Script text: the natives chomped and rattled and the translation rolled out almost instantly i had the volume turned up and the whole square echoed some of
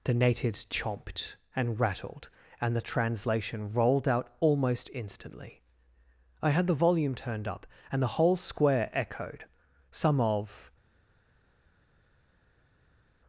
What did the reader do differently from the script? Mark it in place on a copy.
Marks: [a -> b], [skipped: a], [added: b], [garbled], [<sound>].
the natives chomped and rattled and the translation rolled out almost instantly i had the volume turned up and the whole square echoed some of